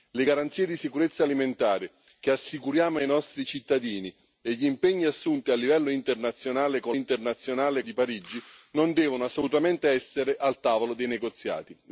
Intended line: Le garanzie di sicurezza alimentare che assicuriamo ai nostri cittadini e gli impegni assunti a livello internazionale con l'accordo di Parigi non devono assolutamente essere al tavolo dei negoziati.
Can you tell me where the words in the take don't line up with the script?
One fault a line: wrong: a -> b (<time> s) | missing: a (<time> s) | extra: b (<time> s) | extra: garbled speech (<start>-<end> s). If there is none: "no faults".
wrong: l'accordo -> internazionale (6.9 s)